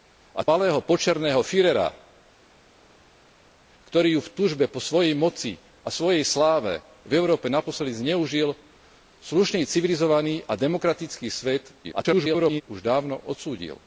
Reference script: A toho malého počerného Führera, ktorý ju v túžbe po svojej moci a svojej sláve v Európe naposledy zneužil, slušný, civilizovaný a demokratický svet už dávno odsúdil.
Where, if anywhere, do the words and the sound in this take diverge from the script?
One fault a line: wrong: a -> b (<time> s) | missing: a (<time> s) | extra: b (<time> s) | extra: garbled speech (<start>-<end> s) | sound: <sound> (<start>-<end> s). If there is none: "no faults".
missing: toho (0.5 s)
extra: garbled speech (11.8-12.6 s)